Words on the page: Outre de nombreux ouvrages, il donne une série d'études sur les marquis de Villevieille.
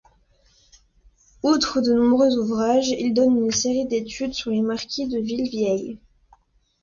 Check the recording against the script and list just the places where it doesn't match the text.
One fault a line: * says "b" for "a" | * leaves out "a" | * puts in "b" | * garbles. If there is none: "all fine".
all fine